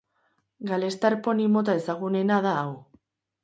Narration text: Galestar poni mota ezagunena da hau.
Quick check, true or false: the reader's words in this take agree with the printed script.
true